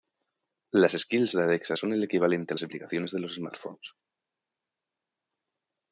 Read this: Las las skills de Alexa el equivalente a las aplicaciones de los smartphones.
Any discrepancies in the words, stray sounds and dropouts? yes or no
yes